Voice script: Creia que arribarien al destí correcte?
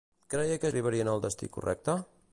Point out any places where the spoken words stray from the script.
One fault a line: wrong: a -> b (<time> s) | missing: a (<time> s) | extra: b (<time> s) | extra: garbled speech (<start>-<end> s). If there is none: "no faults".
no faults